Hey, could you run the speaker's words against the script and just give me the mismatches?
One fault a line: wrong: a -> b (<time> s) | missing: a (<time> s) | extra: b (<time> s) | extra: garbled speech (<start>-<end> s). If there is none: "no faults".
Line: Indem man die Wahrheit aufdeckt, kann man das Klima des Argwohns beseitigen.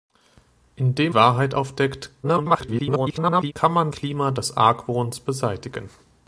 missing: man die (1.1 s)
extra: garbled speech (2.2-3.5 s)
missing: das (3.9 s)